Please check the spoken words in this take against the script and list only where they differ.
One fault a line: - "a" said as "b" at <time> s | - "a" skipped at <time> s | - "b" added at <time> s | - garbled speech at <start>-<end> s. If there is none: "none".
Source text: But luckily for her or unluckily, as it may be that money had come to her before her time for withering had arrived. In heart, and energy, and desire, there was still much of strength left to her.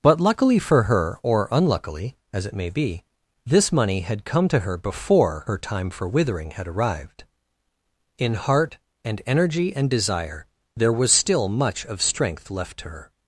- "that" said as "this" at 3.5 s